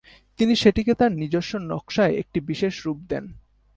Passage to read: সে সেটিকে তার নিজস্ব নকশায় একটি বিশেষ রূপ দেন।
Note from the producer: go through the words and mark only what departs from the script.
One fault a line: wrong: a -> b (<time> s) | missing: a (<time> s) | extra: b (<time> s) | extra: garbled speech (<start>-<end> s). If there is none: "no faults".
wrong: সে -> তিনি (0.4 s)